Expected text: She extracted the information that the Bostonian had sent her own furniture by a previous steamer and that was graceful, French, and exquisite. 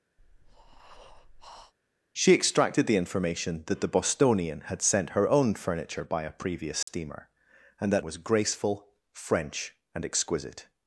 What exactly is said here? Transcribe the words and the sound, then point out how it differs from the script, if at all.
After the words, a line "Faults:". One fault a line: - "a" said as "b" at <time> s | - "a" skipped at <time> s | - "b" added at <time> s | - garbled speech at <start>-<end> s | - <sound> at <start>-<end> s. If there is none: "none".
She extracted the information that the Bostonian had sent her own furniture by a previous steamer and that was graceful, French, and exquisite.
Faults:
- breath at 0.2-1.7 s
- dropout at 6.8-6.9 s